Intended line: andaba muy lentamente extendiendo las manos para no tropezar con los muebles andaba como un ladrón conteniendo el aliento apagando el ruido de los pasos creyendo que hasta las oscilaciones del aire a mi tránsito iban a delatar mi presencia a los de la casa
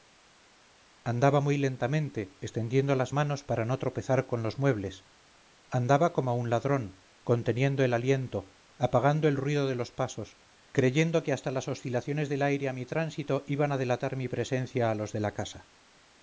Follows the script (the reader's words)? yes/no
yes